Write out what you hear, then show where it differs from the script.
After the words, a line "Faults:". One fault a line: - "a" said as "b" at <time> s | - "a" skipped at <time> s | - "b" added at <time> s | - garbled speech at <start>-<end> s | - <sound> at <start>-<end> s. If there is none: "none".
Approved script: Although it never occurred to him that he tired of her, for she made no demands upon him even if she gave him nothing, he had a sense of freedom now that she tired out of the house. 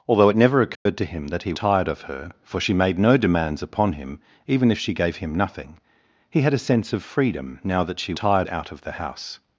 Although it never occurred to him that he tired of her, for she made no demands upon him even if she gave him nothing, he had a sense of freedom now that she tired out of the house.
Faults:
- dropout at 0.7-0.9 s